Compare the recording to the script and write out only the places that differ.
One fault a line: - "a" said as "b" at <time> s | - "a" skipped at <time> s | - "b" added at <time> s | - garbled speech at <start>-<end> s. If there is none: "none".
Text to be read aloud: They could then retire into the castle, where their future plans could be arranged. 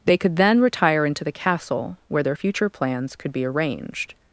none